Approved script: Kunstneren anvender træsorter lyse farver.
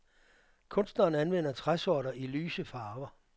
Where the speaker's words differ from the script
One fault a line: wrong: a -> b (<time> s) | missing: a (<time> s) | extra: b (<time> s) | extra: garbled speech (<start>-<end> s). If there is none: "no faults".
extra: i (2.1 s)